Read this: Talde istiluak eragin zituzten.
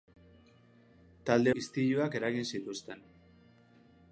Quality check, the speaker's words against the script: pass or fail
pass